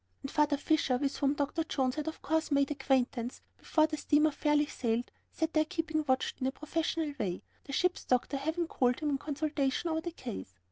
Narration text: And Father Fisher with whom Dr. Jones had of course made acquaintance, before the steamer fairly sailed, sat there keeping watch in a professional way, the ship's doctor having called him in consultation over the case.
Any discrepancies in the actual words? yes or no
no